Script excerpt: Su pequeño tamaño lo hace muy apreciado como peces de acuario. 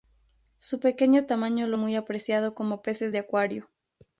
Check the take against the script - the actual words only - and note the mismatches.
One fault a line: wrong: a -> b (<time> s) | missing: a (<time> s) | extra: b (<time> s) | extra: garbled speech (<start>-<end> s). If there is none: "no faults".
missing: hace (1.8 s)